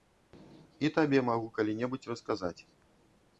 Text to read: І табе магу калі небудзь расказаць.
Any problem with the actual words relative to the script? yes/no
no